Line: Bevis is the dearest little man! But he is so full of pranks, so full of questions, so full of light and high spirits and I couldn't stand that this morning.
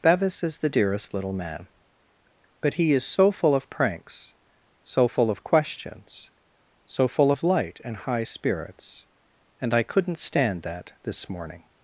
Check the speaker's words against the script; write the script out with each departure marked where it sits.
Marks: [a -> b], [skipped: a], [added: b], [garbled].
Bevis is the dearest little man! But he is so full of pranks, so full of questions, so full of light and high spirits and I couldn't stand that this morning.